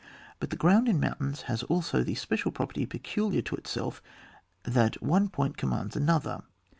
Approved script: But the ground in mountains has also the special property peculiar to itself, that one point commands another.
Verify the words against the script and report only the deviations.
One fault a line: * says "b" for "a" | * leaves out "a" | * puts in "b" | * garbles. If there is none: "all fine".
all fine